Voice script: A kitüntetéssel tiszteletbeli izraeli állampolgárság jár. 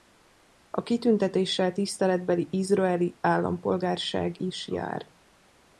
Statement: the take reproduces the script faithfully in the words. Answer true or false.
false